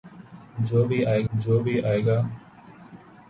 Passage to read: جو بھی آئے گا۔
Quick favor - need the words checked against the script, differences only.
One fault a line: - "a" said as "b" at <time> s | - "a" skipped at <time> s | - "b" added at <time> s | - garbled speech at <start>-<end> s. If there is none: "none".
- "جو بھی آئے" added at 1.3 s